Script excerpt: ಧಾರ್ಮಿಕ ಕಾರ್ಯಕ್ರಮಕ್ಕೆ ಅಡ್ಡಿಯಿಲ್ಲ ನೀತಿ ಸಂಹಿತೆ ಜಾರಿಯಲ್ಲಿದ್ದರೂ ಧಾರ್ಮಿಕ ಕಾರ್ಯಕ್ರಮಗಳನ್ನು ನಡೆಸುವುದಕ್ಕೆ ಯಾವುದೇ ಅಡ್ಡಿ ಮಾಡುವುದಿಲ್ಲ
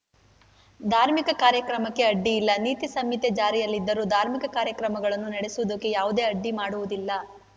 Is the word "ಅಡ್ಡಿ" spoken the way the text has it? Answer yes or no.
yes